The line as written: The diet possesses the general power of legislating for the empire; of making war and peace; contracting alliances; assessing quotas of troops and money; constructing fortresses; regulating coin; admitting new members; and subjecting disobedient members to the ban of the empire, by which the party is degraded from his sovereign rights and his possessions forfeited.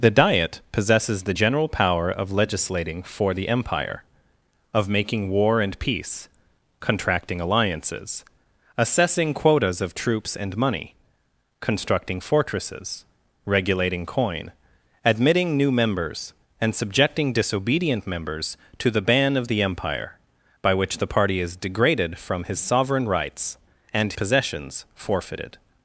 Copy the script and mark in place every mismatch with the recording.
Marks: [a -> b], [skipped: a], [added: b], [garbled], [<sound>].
The diet possesses the general power of legislating for the empire; of making war and peace; contracting alliances; assessing quotas of troops and money; constructing fortresses; regulating coin; admitting new members; and subjecting disobedient members to the ban of the empire, by which the party is degraded from his sovereign rights and [skipped: his] possessions forfeited.